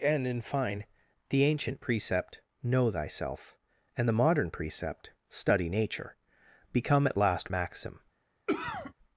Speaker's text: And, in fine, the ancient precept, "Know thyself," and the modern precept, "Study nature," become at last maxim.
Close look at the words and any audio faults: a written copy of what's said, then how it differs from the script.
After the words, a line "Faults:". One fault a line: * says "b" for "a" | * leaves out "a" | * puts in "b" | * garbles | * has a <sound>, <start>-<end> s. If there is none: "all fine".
And, in fine, the ancient precept, "Know thyself," and the modern precept, "Study nature," become at last maxim.
Faults:
* has a cough, 8.5-8.9 s